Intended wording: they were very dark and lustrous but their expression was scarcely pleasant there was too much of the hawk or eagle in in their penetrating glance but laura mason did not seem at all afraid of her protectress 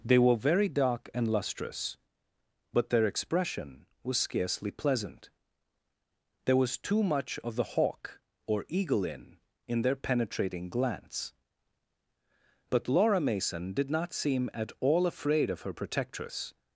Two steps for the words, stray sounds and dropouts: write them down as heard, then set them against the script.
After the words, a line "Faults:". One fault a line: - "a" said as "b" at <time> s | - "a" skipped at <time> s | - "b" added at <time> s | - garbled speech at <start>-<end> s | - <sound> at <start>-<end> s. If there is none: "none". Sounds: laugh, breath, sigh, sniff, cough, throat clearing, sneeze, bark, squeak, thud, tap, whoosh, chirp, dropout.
they were very dark and lustrous but their expression was scarcely pleasant there was too much of the hawk or eagle in in their penetrating glance but laura mason did not seem at all afraid of her protectress
Faults:
none